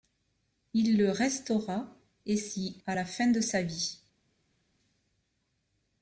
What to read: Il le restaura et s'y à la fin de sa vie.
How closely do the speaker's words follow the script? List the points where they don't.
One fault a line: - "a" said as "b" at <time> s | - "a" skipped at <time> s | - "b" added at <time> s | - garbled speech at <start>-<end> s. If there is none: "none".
none